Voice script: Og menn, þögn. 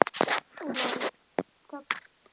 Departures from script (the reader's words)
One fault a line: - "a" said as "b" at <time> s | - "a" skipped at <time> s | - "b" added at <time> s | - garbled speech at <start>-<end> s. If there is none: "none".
none